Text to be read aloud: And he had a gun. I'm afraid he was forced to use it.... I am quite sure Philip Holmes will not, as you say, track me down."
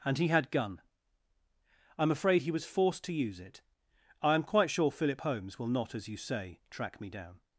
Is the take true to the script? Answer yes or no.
no